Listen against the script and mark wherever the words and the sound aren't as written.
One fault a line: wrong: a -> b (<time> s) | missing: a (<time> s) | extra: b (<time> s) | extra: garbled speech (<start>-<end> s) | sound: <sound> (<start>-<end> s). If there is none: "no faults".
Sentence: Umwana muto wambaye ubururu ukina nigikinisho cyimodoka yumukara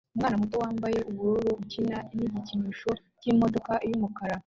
no faults